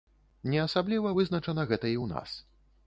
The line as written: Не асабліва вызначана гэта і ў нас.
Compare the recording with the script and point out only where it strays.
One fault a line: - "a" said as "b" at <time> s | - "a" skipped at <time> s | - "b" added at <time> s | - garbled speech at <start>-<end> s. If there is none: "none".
none